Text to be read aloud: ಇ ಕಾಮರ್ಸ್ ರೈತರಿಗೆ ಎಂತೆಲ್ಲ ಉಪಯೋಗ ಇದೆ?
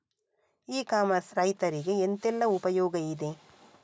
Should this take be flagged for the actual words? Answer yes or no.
no